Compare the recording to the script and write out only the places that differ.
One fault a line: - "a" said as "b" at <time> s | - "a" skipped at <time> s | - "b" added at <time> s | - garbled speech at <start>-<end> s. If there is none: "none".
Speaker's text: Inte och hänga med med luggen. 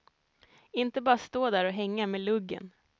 - "bara stå där" added at 1.0 s
- "med" skipped at 2.2 s